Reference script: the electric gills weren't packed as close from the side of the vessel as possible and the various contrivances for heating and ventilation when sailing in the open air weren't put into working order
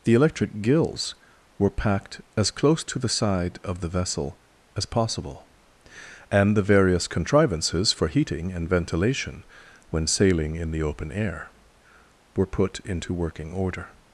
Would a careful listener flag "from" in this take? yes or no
yes